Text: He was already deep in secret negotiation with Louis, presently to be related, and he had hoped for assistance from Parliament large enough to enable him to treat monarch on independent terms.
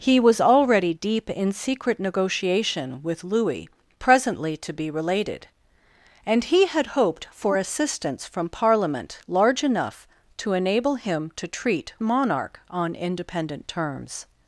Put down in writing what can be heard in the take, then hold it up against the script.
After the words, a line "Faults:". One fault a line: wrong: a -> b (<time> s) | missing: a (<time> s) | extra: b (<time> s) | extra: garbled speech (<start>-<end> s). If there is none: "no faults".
He was already deep in secret negotiation with Louis, presently to be related, and he had hoped for assistance from Parliament large enough to enable him to treat monarch on independent terms.
Faults:
no faults